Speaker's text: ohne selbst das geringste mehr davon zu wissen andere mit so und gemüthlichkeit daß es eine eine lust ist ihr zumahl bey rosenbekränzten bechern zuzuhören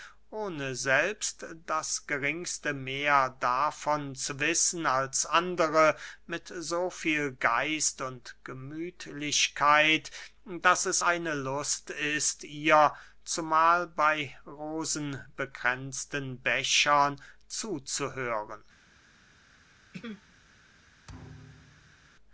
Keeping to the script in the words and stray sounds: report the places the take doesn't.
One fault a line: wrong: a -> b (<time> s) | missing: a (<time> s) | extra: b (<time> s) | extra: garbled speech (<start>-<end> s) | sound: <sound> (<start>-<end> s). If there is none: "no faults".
extra: als (4.9 s)
extra: viel geist (6.9 s)
missing: eine (11.3 s)
sound: throat clearing (19.9-20.3 s)
sound: thud (21.1-22.1 s)